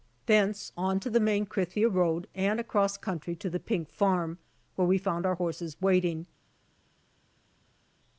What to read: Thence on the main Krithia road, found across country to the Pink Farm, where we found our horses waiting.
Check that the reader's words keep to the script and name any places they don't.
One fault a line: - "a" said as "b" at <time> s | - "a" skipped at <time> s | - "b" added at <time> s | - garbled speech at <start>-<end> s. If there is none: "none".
- "to" added at 1.0 s
- "found" said as "and" at 2.3 s